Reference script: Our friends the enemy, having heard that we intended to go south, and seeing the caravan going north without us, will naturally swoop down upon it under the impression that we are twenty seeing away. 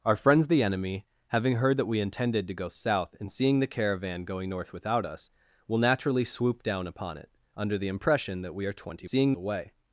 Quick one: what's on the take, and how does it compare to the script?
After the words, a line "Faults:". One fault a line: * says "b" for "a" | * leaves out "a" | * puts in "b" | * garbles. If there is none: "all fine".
Our friends the enemy, having heard that we intended to go south, and seeing the caravan going north without us, will naturally swoop down upon it under the impression that we are twenty seeing away.
Faults:
all fine